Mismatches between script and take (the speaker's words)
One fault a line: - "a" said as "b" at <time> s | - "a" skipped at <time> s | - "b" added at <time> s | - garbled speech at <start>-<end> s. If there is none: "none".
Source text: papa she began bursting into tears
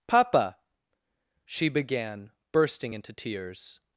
none